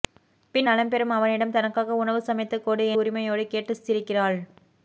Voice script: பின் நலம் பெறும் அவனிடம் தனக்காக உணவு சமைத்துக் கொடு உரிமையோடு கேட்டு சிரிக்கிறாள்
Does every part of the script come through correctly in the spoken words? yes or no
yes